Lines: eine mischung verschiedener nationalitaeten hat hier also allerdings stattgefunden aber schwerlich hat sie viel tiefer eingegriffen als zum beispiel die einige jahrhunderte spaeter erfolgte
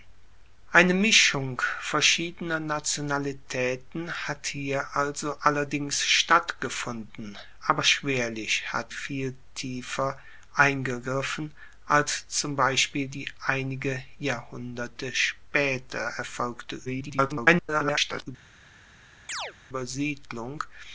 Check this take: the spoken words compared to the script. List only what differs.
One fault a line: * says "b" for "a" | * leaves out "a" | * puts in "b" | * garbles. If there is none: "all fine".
* leaves out "sie"
* garbles